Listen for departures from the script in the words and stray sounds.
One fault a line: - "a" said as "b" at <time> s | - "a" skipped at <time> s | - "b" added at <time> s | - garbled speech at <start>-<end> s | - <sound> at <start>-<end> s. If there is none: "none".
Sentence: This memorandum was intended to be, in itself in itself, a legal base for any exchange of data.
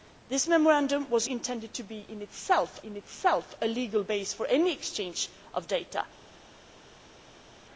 none